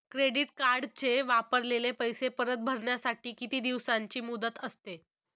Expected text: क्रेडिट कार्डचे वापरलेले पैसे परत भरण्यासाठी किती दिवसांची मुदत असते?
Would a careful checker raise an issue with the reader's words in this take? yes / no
no